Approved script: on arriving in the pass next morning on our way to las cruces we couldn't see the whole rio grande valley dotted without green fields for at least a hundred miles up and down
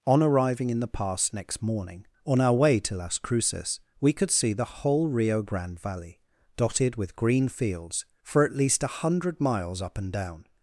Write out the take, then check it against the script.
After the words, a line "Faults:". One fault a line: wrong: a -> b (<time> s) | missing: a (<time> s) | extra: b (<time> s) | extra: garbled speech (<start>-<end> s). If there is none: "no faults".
on arriving in the pass next morning on our way to las cruces we could see the whole rio grande valley dotted with green fields for at least a hundred miles up and down
Faults:
wrong: couldn't -> could (4.1 s)
wrong: without -> with (6.9 s)